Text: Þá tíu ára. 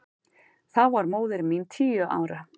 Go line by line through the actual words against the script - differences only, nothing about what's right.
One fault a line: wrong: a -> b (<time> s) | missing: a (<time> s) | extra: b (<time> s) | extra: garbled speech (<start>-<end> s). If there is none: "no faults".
extra: var móðir mín (0.9 s)